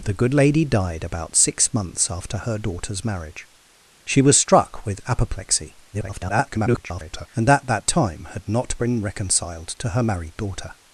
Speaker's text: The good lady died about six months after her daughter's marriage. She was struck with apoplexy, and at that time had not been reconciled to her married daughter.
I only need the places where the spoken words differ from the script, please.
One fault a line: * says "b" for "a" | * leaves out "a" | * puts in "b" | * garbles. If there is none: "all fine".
* garbles